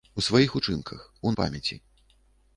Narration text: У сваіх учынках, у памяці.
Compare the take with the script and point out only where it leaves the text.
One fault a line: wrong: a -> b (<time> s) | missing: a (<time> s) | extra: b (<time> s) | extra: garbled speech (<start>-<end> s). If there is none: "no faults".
no faults